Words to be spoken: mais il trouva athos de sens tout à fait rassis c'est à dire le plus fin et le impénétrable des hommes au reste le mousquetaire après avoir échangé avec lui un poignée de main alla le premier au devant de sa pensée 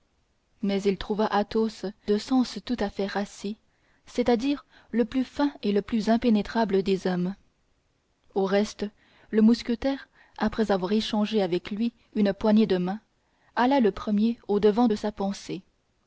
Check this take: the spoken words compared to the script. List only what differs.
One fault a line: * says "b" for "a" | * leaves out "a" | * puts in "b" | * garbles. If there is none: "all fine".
* puts in "plus"
* says "une" for "un"